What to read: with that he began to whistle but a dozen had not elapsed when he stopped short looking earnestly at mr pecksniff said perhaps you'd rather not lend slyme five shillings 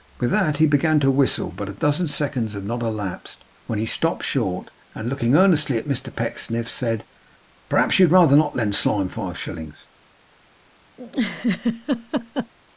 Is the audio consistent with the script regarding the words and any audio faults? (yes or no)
no